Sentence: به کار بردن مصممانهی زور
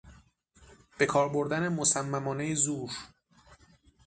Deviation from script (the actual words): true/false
false